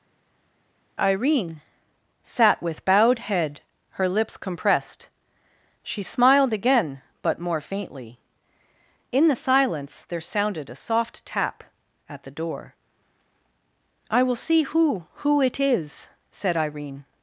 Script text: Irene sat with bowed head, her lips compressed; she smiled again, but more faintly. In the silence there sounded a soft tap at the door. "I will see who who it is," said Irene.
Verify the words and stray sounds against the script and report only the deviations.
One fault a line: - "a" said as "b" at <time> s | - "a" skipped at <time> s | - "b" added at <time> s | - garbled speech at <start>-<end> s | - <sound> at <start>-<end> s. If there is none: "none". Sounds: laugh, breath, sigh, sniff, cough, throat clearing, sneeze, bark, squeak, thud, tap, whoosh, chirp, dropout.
none